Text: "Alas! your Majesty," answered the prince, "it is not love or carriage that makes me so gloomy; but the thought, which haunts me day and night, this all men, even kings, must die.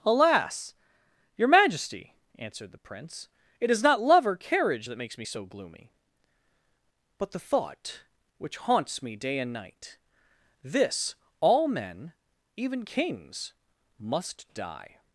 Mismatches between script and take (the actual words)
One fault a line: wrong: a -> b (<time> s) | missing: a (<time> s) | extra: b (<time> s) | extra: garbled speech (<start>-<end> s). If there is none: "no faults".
no faults